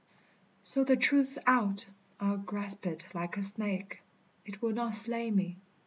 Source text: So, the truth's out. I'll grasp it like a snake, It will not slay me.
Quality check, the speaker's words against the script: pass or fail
pass